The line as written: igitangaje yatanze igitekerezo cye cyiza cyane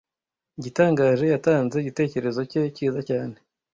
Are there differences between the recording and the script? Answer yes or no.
no